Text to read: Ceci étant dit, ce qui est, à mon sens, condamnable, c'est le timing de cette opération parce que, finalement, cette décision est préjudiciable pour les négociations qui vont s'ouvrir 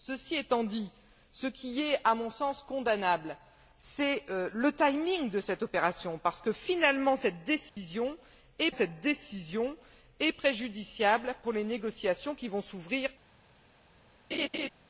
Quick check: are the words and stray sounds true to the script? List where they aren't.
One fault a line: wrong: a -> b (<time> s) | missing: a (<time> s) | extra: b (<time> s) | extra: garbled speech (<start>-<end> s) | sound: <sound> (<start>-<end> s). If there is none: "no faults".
sound: dropout (7.7-7.8 s)
extra: cette décision est (8.7 s)
sound: laugh (14.3-14.7 s)